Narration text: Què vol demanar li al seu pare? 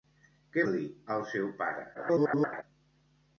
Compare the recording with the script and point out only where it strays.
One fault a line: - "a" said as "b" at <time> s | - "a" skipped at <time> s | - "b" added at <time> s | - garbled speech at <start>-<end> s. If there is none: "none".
- "vol demanar" skipped at 0.6 s
- garbled speech at 1.9-2.6 s